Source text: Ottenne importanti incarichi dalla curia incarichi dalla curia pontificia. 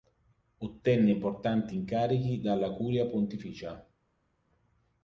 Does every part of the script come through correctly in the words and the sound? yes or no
no